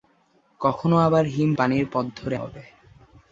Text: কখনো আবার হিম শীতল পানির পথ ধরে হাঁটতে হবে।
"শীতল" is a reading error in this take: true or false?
true